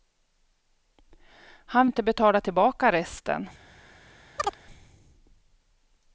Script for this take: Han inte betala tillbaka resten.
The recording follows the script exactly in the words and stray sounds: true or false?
false